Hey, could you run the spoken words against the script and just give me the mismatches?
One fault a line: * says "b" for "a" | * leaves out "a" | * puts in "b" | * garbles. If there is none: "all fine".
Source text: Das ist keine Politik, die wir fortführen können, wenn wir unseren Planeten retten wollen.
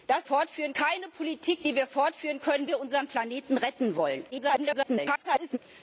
* says "fortführen" for "ist"
* leaves out "wenn"
* garbles